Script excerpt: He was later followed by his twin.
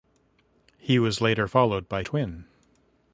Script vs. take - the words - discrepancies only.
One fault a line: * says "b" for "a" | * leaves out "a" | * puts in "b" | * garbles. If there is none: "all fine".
* leaves out "his"